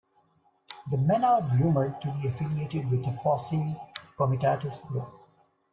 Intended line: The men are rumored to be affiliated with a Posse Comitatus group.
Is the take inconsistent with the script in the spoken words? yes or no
no